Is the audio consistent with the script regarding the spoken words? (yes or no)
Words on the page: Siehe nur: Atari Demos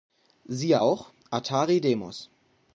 no